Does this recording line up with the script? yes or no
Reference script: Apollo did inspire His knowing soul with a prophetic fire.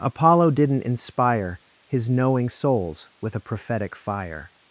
no